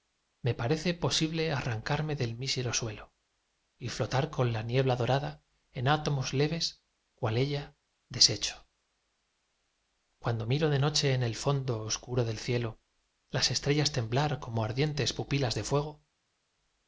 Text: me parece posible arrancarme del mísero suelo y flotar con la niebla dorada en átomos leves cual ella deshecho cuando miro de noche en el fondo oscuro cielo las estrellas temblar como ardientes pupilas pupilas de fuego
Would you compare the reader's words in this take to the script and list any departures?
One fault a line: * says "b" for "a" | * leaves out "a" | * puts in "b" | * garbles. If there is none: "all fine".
* puts in "del"
* leaves out "pupilas"